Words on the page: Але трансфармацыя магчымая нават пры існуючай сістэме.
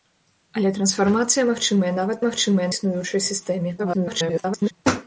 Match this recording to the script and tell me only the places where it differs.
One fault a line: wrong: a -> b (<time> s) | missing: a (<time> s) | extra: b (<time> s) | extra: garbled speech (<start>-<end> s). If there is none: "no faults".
wrong: пры -> магчымая (2.3 s)
extra: garbled speech (3.8-4.7 s)